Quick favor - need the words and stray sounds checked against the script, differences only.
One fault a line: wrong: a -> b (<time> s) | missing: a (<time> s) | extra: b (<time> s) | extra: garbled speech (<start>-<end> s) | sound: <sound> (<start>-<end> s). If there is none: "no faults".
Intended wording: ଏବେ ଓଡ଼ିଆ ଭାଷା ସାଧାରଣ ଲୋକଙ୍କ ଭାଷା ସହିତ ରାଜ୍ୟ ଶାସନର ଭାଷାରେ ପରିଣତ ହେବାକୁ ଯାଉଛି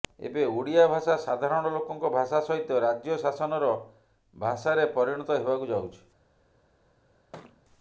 sound: thud (7.3-7.6 s)